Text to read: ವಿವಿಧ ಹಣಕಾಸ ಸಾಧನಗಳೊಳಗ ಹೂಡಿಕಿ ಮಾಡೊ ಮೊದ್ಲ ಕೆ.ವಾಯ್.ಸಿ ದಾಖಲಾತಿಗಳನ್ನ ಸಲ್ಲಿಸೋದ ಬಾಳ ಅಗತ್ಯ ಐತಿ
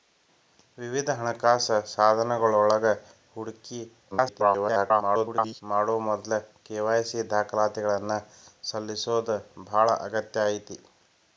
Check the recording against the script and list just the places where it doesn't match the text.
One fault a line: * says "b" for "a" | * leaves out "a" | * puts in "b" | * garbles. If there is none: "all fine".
* garbles